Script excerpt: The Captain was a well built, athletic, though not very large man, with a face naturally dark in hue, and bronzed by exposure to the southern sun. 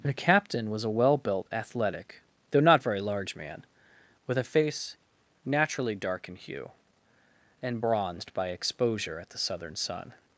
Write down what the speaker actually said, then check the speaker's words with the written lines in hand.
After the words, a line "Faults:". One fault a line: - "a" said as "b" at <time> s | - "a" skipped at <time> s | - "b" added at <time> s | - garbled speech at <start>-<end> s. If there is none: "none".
The Captain was a well built, athletic, though not very large man, with a face naturally dark in hue, and bronzed by exposure at the southern sun.
Faults:
- "to" said as "at" at 9.2 s